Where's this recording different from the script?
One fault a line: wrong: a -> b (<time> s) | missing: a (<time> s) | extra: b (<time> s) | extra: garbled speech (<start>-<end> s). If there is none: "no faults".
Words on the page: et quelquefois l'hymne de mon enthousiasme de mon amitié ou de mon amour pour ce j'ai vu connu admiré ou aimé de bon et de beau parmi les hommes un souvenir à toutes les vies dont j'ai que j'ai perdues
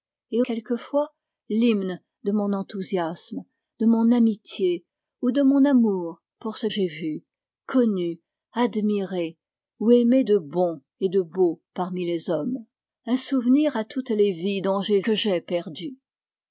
no faults